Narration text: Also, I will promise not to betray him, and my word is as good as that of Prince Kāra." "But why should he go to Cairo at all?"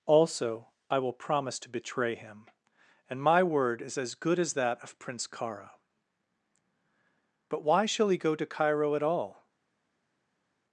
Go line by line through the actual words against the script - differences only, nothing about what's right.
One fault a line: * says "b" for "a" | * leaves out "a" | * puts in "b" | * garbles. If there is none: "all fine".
* leaves out "not"
* says "shall" for "should"